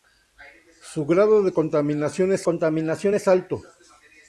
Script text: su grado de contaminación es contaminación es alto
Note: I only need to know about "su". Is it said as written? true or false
true